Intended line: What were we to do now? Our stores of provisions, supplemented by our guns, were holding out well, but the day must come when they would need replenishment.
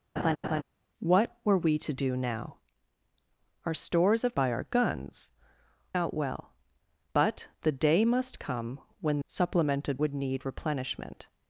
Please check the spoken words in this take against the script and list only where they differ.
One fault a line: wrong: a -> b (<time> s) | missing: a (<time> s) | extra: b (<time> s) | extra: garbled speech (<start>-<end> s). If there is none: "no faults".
missing: provisions supplemented (4.4 s)
missing: were holding (5.3 s)
wrong: they -> supplemented (9.3 s)